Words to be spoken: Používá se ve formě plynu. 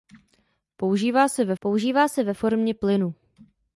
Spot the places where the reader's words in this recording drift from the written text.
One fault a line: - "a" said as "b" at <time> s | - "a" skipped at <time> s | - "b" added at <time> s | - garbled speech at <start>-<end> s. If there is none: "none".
- "používá se ve" added at 1.6 s